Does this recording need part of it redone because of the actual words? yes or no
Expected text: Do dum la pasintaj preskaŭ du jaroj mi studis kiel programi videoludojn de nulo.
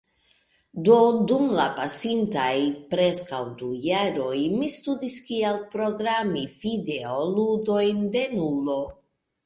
no